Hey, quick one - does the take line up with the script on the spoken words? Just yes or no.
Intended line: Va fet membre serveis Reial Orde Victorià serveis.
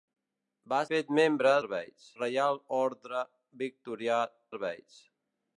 yes